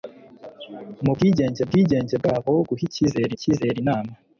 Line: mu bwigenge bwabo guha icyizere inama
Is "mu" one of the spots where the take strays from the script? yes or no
no